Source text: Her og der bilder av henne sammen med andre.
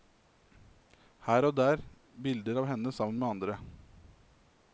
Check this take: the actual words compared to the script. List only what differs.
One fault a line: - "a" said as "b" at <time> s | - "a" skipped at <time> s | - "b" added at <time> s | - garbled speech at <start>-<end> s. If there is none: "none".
none